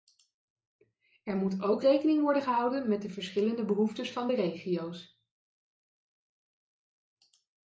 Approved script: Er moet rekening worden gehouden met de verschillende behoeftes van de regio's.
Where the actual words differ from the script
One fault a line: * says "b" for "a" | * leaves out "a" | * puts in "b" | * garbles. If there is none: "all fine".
* puts in "ook"